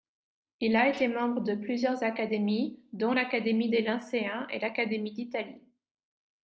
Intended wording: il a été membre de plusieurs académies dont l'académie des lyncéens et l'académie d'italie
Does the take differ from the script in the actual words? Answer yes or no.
no